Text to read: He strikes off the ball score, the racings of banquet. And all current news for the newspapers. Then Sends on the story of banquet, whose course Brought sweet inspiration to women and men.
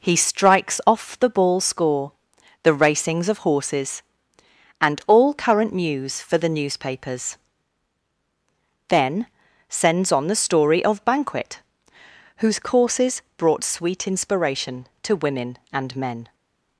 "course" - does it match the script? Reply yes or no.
no